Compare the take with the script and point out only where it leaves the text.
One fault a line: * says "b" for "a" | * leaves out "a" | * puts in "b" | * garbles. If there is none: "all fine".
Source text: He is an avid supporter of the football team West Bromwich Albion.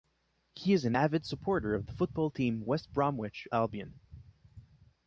all fine